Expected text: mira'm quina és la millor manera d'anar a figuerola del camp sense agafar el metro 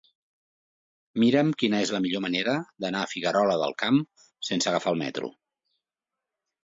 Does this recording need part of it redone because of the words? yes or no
no